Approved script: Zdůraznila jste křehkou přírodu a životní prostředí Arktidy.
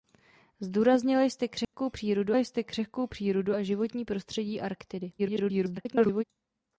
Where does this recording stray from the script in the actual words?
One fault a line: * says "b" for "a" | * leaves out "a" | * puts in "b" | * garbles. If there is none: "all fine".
* puts in "jste křehkou přírodu"
* garbles